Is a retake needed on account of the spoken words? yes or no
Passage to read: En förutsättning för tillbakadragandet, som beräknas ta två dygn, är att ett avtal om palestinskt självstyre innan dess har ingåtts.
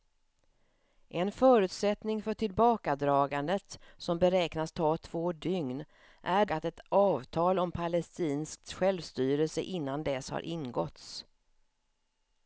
no